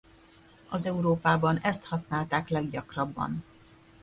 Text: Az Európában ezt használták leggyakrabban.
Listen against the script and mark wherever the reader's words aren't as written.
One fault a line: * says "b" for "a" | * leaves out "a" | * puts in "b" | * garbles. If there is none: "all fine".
all fine